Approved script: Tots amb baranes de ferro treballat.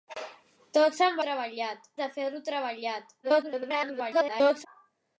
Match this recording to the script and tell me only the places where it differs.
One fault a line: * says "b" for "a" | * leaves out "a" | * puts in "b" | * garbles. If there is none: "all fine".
* says "treballat" for "baranes"
* garbles